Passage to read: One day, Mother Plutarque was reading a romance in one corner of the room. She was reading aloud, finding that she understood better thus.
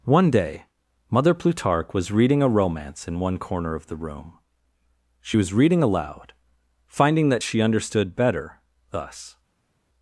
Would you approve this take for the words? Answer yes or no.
yes